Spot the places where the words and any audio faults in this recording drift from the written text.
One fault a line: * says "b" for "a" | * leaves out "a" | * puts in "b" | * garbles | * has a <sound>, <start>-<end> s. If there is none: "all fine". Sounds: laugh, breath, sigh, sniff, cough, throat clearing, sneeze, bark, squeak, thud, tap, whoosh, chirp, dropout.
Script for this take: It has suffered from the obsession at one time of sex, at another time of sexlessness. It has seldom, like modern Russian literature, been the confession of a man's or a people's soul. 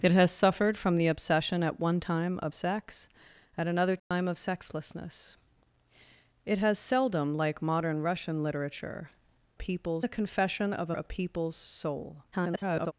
* has a dropout, 4.0-4.1 s
* says "people's" for "been"
* leaves out "man's or"
* garbles